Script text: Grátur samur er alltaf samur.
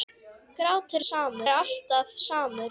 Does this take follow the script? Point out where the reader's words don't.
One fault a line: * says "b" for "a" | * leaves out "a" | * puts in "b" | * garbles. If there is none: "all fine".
all fine